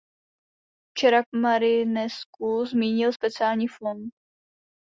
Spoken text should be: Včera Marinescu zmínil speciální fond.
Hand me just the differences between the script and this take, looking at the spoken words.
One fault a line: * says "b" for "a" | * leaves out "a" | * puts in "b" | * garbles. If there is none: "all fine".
all fine